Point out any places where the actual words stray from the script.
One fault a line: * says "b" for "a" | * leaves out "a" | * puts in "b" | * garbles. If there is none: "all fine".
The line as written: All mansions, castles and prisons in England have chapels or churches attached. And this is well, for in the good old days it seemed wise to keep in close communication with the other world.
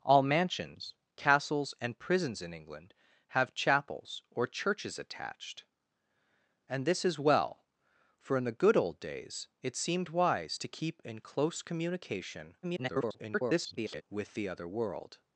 * garbles